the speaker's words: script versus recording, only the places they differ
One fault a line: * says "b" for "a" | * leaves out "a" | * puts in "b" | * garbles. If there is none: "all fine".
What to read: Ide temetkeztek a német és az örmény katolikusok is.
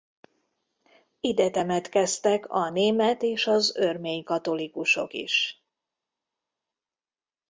all fine